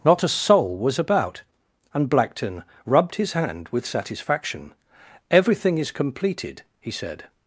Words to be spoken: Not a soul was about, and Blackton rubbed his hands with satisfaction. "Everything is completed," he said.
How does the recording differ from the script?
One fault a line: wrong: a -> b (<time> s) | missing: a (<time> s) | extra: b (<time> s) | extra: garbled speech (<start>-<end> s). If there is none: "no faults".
wrong: hands -> hand (3.3 s)